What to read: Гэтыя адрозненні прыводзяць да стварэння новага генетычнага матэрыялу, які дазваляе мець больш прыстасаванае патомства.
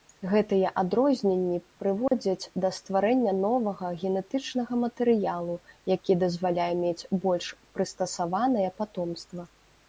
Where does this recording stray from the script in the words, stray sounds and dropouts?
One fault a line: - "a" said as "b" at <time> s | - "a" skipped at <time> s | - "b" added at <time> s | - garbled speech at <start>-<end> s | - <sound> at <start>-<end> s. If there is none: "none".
- dropout at 2.1-2.1 s